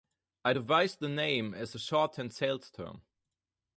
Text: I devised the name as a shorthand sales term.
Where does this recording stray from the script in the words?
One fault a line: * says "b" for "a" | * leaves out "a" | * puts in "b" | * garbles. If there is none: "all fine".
all fine